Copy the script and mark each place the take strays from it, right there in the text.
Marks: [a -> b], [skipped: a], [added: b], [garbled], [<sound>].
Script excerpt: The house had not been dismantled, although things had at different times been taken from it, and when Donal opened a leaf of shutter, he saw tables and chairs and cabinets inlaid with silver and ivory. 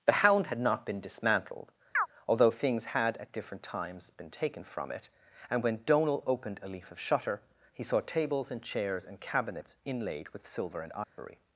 The [house -> hound] had not been dismantled, [chirp] although things had at different times been taken from it, and when Donal opened a leaf of shutter, he saw tables and chairs and cabinets inlaid with silver and ivory. [dropout]